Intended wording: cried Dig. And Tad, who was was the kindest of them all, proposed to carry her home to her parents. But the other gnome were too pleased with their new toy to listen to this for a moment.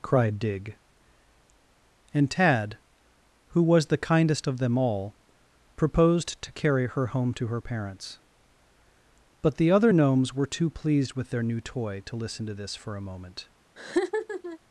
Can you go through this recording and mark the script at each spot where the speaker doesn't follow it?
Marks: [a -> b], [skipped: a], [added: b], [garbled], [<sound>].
cried Dig. And Tad, who was [skipped: was] the kindest of them all, proposed to carry her home to her parents. But the other [gnome -> gnomes] were too pleased with their new toy to listen to this for a moment. [laugh]